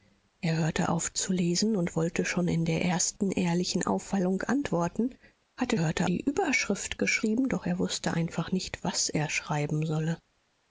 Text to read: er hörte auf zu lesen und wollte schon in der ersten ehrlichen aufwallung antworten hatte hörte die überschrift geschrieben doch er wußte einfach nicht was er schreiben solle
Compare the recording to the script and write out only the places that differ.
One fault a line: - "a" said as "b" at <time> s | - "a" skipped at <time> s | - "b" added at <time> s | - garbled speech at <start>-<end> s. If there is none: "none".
none